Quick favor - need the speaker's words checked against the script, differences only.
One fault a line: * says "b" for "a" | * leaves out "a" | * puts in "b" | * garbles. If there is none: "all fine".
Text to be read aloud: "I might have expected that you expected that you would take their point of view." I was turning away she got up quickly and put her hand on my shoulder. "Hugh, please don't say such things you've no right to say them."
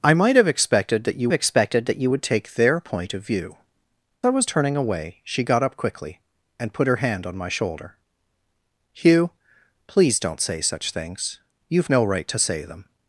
all fine